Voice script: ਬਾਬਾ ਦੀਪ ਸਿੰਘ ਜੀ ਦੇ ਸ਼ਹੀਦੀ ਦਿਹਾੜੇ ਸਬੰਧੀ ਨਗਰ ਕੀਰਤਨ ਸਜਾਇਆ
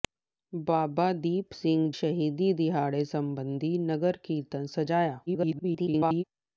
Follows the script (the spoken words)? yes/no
no